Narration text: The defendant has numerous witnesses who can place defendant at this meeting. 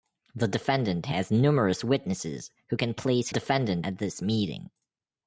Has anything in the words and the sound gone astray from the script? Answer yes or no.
no